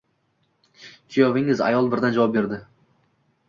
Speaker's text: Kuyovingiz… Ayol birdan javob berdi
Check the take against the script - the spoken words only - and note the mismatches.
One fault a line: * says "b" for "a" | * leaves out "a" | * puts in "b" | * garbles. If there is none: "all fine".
all fine